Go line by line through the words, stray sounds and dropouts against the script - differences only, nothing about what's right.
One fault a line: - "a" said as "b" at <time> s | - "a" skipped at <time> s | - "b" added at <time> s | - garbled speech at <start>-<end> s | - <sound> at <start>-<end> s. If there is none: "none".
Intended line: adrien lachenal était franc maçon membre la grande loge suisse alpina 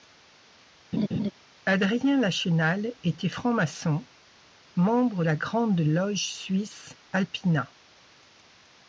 - laugh at 0.9-1.3 s